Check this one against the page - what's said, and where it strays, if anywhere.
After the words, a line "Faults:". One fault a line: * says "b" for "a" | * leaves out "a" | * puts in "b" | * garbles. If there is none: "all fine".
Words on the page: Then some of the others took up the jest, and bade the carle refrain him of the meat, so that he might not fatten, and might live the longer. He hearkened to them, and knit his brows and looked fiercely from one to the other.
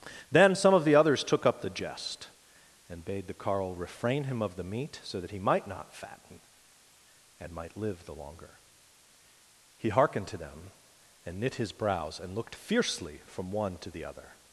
Then some of the others took up the jest, and bade the carle refrain him of the meat, so that he might not fatten, and might live the longer. He hearkened to them, and knit his brows and looked fiercely from one to the other.
Faults:
all fine